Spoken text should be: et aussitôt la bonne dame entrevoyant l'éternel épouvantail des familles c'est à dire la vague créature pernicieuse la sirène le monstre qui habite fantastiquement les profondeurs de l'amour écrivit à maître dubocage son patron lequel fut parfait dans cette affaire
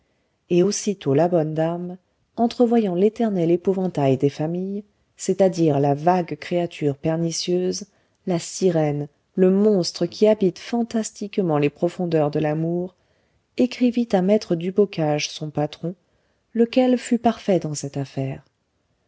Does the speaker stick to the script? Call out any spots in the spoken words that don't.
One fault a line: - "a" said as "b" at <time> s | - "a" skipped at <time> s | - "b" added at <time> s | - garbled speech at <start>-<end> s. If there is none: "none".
none